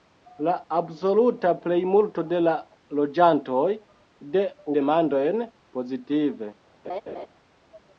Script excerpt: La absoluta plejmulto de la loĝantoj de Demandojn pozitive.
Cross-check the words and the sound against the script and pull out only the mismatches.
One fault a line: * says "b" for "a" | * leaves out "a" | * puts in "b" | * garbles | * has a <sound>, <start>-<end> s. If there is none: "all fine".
* has a laugh, 6.8-7.3 s